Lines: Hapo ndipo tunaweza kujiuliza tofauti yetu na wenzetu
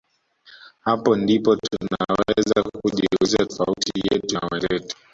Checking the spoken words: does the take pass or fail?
pass